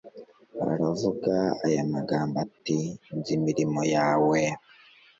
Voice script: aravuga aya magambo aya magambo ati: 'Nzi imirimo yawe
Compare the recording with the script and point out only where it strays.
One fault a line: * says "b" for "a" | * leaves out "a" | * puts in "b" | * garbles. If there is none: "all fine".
* leaves out "aya magambo"